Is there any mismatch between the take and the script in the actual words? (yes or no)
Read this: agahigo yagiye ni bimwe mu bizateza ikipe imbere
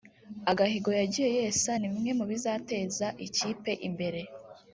yes